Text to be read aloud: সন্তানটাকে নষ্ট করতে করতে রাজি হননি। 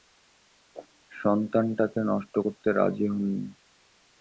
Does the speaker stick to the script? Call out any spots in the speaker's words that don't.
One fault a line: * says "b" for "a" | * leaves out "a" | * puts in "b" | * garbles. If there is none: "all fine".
* leaves out "করতে"